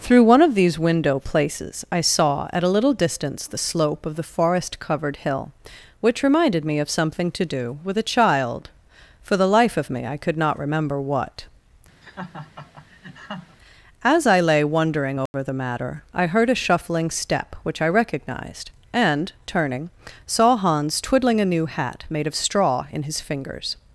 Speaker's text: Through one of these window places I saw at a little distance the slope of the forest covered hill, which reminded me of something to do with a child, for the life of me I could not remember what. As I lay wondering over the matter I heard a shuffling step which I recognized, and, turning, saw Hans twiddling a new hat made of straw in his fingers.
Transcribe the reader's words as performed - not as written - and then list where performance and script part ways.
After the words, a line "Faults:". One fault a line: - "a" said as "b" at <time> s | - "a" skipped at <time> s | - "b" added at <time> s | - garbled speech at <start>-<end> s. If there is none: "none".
Through one of these window places I saw at a little distance the slope of the forest covered hill, which reminded me of something to do with a child, for the life of me I could not remember what. As I lay wondering over the matter I heard a shuffling step which I recognized, and, turning, saw Hans twiddling a new hat made of straw in his fingers.
Faults:
none